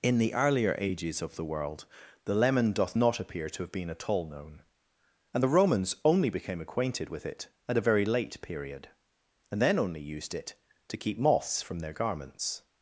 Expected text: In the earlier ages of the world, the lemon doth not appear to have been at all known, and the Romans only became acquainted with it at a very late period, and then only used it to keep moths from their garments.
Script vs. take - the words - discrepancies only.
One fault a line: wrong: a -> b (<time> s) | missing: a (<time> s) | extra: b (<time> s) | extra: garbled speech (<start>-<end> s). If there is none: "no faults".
no faults